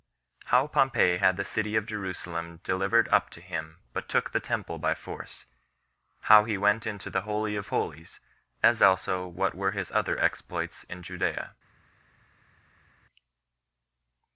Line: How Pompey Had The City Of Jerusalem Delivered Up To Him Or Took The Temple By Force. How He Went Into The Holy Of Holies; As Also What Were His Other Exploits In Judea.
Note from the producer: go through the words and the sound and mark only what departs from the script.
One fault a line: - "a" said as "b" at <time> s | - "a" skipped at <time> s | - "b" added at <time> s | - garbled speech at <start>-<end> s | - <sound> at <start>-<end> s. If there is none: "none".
- "Or" said as "But" at 3.9 s